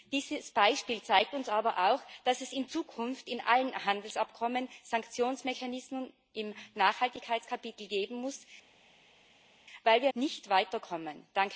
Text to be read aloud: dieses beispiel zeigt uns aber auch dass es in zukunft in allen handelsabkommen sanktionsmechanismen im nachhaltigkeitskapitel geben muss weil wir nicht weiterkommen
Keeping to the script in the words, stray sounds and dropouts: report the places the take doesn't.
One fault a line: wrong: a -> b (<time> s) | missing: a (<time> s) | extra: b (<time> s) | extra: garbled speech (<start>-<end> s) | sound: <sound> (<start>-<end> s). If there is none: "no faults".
no faults